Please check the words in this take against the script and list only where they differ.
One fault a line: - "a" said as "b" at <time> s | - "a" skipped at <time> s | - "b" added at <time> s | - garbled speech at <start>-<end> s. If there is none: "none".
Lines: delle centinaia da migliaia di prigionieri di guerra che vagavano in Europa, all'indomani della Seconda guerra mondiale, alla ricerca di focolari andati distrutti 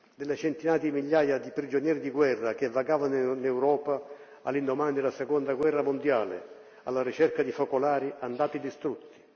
- "da" said as "di" at 0.8 s